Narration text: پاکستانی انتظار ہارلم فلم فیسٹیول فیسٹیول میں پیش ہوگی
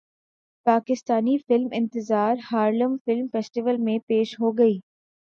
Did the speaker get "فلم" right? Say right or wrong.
right